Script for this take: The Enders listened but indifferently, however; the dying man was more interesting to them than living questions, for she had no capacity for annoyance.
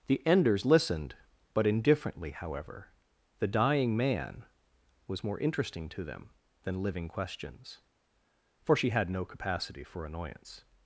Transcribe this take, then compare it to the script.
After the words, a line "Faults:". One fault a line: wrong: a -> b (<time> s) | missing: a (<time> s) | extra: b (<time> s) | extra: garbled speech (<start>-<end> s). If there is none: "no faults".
The Enders listened but indifferently, however; the dying man was more interesting to them than living questions, for she had no capacity for annoyance.
Faults:
no faults